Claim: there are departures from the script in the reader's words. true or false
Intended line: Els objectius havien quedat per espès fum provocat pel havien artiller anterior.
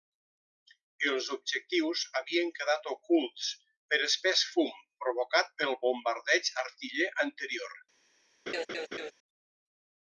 true